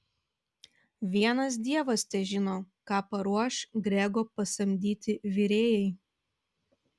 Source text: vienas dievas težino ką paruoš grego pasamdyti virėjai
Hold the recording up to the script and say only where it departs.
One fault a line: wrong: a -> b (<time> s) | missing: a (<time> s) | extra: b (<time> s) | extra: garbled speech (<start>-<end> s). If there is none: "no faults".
no faults